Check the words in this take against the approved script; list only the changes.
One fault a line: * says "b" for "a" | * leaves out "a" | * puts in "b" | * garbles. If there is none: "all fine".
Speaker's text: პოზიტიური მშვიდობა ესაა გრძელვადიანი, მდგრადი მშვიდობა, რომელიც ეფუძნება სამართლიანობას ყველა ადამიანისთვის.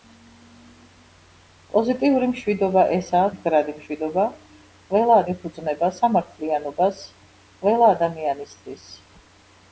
* leaves out "გრძელვადიანი"
* says "ყველა" for "რომელიც"